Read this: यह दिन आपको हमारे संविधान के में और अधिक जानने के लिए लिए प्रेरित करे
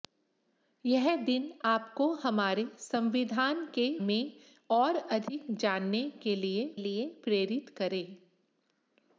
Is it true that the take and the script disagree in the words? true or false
false